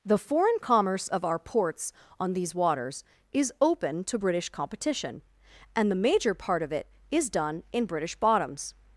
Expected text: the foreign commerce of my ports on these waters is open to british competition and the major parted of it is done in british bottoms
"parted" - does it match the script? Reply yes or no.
no